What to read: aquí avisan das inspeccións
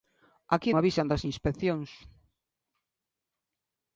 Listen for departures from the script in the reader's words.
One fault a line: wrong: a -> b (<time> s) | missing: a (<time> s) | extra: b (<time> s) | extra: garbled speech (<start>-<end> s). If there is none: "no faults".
no faults